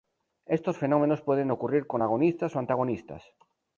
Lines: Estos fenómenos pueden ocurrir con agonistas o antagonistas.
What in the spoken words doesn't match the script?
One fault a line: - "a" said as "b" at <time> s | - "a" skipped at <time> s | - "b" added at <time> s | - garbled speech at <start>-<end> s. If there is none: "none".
none